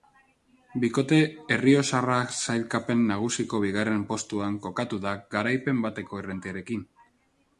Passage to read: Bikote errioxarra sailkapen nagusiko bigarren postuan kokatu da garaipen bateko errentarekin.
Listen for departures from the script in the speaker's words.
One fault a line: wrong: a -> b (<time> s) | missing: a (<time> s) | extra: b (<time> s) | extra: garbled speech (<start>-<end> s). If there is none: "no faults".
no faults